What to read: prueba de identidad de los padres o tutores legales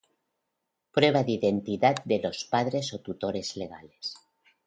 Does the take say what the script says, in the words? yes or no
yes